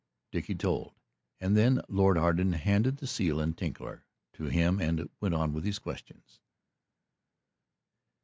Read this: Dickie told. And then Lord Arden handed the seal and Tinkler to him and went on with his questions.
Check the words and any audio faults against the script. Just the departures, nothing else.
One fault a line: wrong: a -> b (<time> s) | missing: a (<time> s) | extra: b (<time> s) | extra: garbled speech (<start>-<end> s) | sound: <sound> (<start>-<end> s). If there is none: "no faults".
no faults